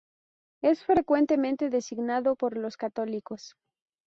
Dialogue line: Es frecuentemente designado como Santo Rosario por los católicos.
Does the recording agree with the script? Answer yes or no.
no